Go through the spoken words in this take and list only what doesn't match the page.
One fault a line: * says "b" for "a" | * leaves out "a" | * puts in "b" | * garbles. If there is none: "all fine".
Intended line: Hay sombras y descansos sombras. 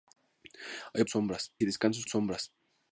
all fine